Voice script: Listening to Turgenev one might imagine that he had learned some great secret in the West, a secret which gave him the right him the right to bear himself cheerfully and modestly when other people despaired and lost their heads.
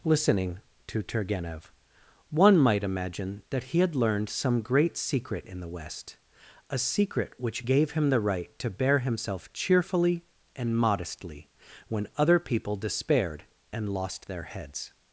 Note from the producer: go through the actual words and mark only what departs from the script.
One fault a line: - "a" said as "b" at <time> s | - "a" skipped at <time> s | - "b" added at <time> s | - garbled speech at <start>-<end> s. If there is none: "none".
- "him the right" skipped at 8.6 s